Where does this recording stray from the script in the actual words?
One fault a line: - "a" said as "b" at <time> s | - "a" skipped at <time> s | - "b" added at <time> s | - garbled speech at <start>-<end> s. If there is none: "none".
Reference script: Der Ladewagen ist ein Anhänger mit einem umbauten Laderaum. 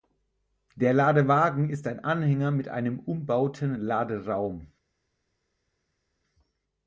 none